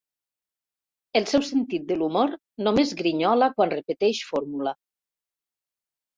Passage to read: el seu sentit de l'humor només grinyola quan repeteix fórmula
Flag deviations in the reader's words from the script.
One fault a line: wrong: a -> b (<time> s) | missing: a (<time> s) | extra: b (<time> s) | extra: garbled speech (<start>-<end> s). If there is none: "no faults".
no faults